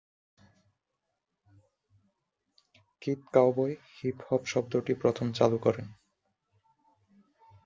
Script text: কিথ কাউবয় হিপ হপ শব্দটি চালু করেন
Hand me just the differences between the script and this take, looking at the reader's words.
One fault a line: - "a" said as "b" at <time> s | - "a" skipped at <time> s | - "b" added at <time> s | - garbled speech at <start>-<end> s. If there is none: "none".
- "প্রথম" added at 4.9 s